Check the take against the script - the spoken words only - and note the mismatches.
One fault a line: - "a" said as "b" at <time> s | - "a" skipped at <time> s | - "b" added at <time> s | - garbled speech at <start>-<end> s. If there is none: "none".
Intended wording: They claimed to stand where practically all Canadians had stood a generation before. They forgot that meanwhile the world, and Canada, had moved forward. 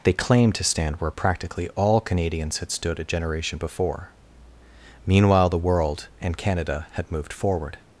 - "They forgot that" skipped at 4.1 s